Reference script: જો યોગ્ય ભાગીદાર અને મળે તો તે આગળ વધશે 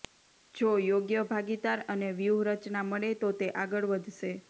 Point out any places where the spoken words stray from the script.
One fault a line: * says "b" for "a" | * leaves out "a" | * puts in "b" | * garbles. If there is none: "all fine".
* puts in "વ્યૂહરચના"